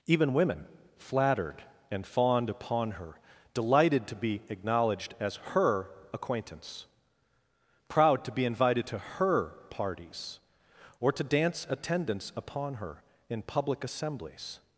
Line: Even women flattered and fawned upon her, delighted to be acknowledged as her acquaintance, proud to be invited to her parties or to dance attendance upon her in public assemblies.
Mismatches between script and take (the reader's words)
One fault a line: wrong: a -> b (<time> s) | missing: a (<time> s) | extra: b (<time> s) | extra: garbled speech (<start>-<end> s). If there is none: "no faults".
no faults